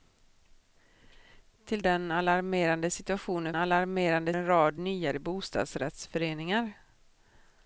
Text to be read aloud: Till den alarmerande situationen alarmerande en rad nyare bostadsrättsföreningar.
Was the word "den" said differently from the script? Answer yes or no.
no